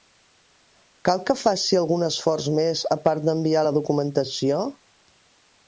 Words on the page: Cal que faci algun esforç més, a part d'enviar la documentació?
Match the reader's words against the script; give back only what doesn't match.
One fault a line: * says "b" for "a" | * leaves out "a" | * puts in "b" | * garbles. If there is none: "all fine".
all fine